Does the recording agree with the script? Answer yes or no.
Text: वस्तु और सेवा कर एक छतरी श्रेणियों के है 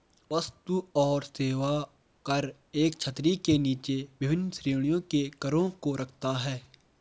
no